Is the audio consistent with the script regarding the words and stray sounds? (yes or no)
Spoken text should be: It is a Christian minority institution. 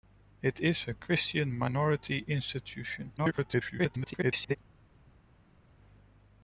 no